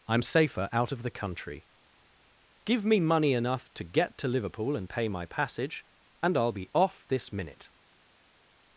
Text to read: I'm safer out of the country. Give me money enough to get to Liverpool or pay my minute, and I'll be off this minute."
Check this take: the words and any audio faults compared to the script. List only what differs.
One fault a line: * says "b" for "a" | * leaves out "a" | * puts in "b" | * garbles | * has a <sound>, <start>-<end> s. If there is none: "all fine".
* says "and" for "or"
* says "passage" for "minute"